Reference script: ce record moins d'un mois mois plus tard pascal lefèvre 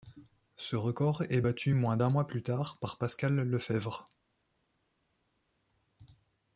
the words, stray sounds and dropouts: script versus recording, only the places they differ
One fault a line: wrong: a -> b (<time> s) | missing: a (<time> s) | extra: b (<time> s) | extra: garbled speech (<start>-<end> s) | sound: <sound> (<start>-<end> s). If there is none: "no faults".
extra: est battu (1.3 s)
missing: mois (2.3 s)
extra: par (2.8 s)